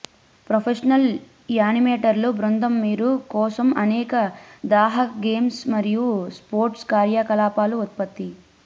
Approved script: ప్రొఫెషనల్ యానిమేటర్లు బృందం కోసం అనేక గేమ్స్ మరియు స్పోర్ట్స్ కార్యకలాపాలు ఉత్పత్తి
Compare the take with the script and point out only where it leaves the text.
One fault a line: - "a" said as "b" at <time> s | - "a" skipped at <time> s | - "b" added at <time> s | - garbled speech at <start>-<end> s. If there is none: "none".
- "మీరు" added at 2.8 s
- "దాహక" added at 4.7 s